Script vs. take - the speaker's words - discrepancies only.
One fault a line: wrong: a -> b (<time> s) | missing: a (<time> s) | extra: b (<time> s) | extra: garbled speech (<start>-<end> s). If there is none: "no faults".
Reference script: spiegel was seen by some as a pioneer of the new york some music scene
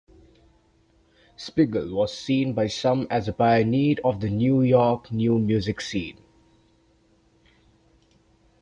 wrong: some -> new (5.1 s)